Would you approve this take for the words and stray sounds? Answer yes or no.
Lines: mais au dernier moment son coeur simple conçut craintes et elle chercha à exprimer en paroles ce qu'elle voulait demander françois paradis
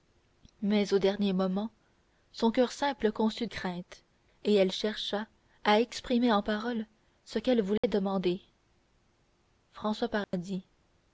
no